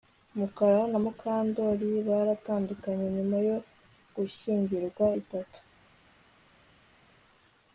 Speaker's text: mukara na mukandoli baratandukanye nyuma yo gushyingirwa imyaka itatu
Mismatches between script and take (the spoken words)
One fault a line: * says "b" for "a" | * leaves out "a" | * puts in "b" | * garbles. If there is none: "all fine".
* leaves out "imyaka"